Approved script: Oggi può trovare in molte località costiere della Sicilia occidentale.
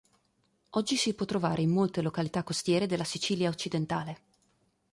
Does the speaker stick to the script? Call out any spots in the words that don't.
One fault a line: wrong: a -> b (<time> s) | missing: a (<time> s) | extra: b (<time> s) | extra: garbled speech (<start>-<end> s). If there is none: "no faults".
extra: si (0.9 s)